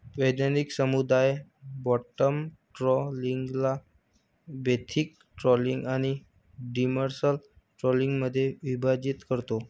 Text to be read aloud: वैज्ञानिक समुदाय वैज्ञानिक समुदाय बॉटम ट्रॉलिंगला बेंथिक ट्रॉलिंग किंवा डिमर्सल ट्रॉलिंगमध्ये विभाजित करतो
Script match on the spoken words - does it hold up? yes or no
no